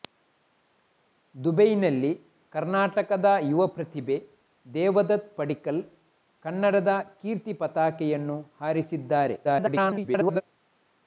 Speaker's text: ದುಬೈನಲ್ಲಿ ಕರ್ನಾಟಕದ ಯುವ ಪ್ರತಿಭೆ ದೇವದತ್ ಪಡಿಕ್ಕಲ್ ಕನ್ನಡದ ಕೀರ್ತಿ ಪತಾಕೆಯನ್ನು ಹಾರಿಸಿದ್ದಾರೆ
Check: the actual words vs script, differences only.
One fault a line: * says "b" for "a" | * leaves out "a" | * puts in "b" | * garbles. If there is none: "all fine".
* garbles